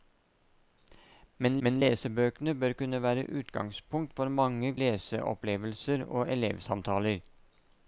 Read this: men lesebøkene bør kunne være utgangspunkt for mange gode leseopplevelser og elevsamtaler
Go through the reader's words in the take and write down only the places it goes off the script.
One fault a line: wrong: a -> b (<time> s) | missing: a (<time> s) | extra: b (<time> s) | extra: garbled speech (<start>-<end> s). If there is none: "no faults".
extra: men (1.7 s)
missing: gode (4.7 s)